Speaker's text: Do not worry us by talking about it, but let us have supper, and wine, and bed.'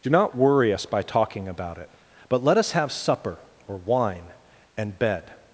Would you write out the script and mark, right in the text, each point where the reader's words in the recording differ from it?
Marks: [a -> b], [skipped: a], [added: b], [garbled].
Do not worry us by talking about it, but let us have supper, [and -> or] wine, and bed.'